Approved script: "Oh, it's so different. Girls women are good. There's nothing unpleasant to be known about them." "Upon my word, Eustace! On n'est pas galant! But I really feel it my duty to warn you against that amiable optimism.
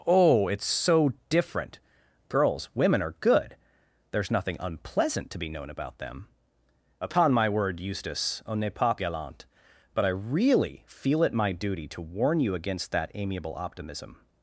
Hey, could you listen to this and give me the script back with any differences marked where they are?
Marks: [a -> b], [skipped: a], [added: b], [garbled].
"Oh, it's so different. Girls women are good. There's nothing unpleasant to be known about them." "Upon my word, Eustace! On n'est pas galant! But I really feel it my duty to warn you against that amiable optimism.